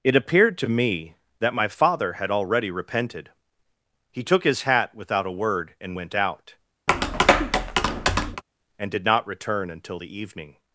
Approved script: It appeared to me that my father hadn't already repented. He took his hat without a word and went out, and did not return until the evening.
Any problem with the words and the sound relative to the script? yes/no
yes